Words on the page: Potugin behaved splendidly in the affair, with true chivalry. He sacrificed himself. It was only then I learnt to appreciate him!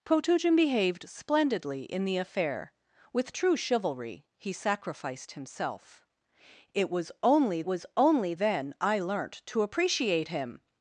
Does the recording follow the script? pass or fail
fail